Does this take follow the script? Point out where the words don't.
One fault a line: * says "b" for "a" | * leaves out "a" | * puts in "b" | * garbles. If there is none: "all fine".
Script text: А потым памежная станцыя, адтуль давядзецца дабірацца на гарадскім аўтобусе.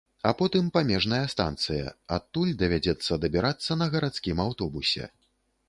all fine